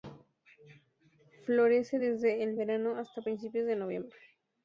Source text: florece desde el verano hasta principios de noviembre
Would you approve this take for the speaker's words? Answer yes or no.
yes